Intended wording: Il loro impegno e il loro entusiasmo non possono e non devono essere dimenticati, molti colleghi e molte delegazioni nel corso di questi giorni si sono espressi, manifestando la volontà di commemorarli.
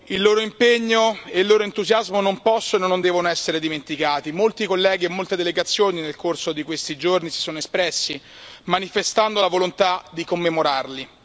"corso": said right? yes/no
yes